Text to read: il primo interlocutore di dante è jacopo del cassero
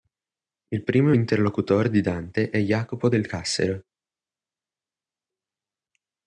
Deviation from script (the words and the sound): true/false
false